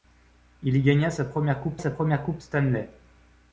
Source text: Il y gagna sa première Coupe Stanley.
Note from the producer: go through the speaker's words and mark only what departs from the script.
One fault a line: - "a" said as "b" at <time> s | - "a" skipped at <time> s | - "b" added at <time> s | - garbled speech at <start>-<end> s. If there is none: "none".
- "sa première Coupe" added at 1.8 s